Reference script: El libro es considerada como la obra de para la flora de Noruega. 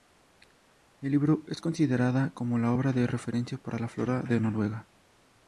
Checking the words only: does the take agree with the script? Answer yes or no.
no